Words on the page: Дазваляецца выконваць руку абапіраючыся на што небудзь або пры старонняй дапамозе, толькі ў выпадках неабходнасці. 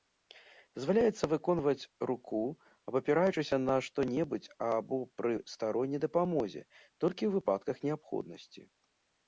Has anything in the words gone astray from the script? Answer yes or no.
no